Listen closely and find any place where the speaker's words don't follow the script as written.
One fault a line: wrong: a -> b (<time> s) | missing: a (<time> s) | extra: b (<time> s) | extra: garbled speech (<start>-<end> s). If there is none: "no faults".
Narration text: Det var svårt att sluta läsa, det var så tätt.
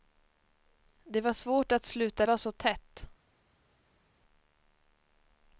missing: läsa det (2.2 s)